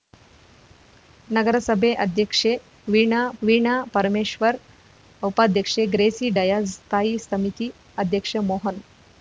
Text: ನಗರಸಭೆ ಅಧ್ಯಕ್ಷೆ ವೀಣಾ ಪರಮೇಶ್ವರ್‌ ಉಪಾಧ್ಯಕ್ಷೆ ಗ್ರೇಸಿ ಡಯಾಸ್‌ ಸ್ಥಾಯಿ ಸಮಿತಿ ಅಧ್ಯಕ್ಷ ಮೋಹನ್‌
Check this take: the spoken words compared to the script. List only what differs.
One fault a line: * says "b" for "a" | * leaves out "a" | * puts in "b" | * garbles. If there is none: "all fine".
* puts in "ವೀಣಾ"